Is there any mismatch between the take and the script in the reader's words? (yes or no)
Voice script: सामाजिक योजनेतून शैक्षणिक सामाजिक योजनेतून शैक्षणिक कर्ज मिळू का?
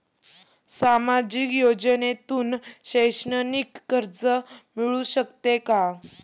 yes